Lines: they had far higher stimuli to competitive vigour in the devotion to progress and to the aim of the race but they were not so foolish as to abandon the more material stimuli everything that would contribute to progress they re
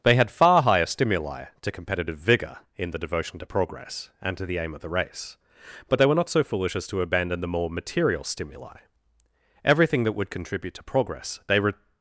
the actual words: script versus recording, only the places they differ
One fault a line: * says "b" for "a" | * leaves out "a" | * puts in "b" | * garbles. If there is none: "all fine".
all fine